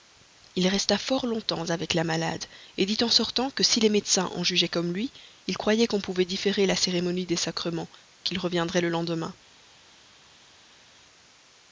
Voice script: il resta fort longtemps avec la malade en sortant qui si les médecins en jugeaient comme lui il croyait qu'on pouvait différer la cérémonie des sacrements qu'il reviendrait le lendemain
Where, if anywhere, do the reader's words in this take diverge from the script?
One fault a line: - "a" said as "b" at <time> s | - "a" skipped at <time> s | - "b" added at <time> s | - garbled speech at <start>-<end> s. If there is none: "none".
- "dit" added at 2.8 s
- "qui" said as "que" at 3.5 s